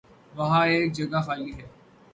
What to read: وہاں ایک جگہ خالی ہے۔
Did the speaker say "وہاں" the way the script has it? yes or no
yes